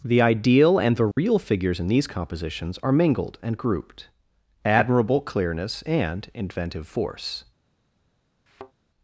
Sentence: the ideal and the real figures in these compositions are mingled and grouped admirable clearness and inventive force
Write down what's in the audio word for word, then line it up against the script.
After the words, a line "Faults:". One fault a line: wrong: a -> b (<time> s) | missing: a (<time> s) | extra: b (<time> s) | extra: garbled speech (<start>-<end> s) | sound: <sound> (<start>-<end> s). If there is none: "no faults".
the ideal and the real figures in these compositions are mingled and grouped admirable clearness and inventive force
Faults:
sound: dropout (1.1-1.2 s)
sound: thud (8.5-8.7 s)